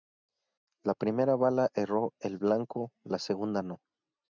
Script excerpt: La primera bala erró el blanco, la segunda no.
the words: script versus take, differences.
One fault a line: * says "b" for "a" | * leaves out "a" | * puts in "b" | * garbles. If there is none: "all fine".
all fine